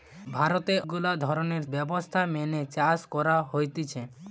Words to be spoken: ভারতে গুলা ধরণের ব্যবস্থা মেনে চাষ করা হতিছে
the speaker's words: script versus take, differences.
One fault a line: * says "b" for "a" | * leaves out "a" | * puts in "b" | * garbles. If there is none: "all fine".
all fine